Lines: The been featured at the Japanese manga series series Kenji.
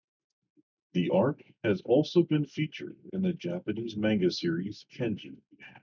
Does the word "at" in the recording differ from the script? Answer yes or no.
yes